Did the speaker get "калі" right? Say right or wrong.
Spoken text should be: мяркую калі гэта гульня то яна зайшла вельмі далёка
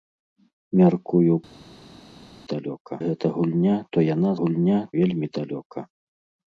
wrong